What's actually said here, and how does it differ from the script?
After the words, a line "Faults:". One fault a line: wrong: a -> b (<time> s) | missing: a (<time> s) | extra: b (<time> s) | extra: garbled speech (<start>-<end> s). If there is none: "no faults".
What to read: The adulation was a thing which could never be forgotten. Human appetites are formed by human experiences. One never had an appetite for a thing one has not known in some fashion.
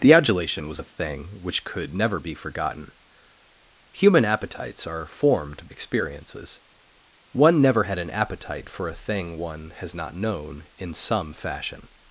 The adulation was a thing which could never be forgotten. Human appetites are formed experiences. One never had an appetite for a thing one has not known in some fashion.
Faults:
missing: by human (5.7 s)